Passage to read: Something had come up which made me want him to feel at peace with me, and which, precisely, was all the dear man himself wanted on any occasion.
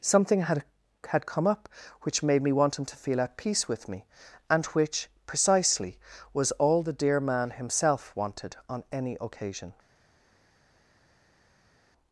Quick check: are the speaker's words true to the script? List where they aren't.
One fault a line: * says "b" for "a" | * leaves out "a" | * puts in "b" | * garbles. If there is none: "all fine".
* puts in "had"